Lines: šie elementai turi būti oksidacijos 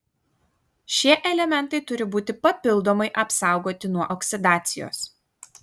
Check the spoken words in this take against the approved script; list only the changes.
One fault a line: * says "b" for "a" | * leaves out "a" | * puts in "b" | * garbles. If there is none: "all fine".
* puts in "papildomai apsaugoti nuo"